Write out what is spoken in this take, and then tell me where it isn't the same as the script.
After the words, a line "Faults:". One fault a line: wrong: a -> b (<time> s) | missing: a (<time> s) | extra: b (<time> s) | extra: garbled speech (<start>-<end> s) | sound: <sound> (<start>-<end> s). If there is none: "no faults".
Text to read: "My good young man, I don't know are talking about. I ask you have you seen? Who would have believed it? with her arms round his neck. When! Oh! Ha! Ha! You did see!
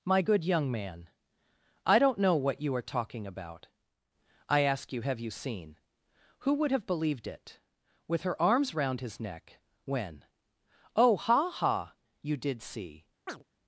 "My good young man, I don't know what you are talking about. I ask you have you seen? Who would have believed it? with her arms round his neck. When! Oh! Ha! Ha! You did see!
Faults:
extra: what you (2.4 s)
sound: chirp (13.3-13.4 s)